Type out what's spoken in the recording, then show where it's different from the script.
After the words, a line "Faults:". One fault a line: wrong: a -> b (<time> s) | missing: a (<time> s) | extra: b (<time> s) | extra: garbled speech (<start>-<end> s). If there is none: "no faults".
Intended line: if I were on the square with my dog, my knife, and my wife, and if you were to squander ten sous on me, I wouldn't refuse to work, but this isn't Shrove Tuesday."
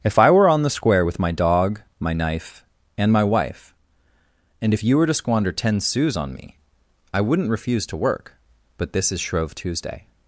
if I were on the square with my dog, my knife, and my wife, and if you were to squander ten sous on me, I wouldn't refuse to work, but this is Shrove Tuesday."
Faults:
wrong: isn't -> is (9.1 s)